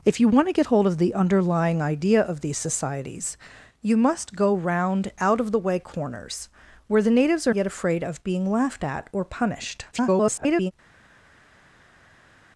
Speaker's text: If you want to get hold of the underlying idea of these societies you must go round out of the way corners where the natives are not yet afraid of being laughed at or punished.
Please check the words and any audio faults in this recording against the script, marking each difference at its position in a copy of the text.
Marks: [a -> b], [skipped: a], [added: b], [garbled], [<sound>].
If you want to get hold of the underlying idea of these societies you must go round out of the way corners where the natives are [skipped: not] yet afraid of being laughed at or punished. [garbled]